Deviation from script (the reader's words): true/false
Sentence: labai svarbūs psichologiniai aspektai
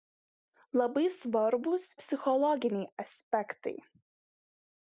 false